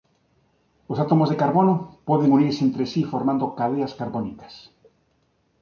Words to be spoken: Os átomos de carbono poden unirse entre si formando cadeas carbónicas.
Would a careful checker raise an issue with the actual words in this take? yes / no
no